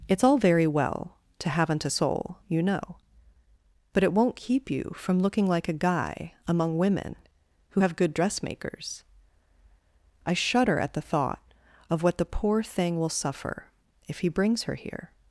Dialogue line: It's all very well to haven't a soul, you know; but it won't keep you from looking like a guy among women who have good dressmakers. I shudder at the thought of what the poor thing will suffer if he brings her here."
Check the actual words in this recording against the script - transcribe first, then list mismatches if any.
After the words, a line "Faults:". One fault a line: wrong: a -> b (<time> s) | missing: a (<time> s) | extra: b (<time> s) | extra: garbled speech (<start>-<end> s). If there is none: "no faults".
It's all very well to haven't a soul, you know; but it won't keep you from looking like a guy among women who have good dressmakers. I shudder at the thought of what the poor thing will suffer if he brings her here."
Faults:
no faults